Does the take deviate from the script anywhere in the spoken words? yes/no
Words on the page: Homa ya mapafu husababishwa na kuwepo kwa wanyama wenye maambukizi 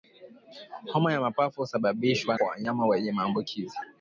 yes